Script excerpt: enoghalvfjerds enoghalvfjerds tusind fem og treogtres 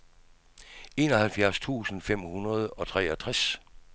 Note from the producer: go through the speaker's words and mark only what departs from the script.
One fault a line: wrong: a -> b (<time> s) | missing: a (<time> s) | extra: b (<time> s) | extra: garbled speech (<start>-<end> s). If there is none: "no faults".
missing: enoghalvfjerds (1.6 s)
extra: hundrede (2.2 s)